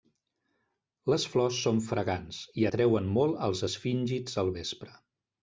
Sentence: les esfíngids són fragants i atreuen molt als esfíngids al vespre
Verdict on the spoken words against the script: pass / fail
fail